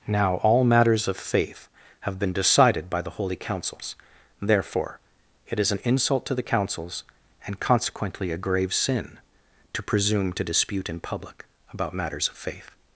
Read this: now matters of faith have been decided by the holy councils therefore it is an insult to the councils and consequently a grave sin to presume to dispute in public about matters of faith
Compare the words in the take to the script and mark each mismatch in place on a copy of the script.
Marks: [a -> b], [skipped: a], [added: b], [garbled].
now [added: all] matters of faith have been decided by the holy councils therefore it is an insult to the councils and consequently a grave sin to presume to dispute in public about matters of faith